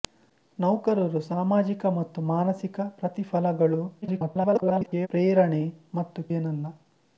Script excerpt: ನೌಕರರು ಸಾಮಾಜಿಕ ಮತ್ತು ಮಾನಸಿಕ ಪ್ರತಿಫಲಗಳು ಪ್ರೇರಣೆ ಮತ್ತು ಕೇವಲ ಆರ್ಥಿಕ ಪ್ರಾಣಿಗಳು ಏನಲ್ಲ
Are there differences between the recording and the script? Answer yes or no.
yes